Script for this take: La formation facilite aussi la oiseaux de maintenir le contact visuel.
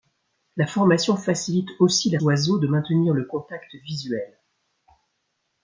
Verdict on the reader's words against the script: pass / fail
pass